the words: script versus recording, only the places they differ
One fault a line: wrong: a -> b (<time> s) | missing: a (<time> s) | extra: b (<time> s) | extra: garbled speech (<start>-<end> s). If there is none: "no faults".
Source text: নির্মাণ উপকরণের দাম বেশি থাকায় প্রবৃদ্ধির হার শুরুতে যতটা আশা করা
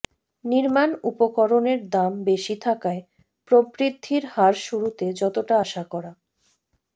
no faults